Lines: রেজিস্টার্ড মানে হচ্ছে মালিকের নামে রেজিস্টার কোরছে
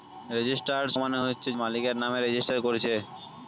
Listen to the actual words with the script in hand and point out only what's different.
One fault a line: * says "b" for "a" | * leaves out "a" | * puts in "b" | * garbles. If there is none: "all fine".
all fine